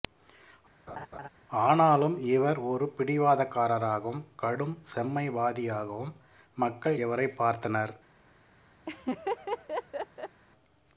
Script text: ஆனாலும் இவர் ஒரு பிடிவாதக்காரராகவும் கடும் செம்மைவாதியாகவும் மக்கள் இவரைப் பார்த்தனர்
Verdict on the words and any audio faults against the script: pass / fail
fail